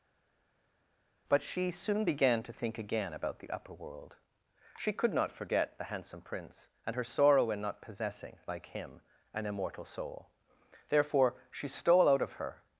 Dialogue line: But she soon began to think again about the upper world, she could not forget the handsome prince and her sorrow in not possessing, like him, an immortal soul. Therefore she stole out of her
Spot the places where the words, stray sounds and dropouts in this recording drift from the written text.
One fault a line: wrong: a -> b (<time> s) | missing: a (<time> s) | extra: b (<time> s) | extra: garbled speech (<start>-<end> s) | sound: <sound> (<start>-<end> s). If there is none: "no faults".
no faults